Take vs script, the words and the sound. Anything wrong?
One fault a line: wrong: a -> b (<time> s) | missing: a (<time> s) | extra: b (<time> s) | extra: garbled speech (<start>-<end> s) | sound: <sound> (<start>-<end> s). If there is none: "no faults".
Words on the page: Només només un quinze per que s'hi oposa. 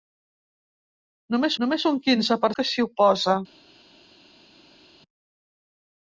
no faults